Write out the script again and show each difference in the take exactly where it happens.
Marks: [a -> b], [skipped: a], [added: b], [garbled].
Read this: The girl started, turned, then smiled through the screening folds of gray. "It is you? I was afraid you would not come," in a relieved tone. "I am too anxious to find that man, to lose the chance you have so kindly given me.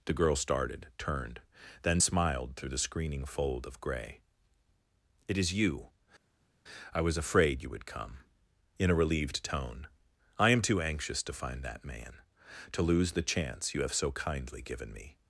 The girl started, turned, then smiled through the screening [folds -> fold] of gray. "It is you? I was afraid you would [skipped: not] come," in a relieved tone. "I am too anxious to find that man, to lose the chance you have so kindly given me.